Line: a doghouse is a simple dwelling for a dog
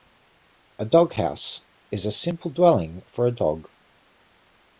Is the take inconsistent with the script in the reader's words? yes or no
no